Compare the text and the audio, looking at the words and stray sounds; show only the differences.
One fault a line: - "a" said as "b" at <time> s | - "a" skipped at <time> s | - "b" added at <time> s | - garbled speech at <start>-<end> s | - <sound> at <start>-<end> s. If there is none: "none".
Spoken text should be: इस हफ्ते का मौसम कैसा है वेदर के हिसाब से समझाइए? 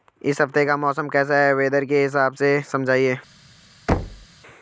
- thud at 3.9-4.3 s